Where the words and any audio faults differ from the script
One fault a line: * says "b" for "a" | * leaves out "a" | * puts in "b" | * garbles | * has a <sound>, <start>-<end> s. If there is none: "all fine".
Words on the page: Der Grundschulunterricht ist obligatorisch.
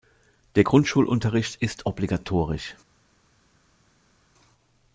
all fine